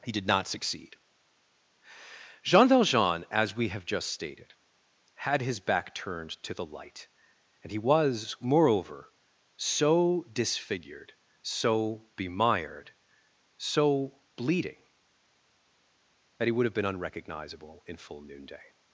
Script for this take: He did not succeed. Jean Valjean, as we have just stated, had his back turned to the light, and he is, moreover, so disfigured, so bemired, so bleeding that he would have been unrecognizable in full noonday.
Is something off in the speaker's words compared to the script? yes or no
yes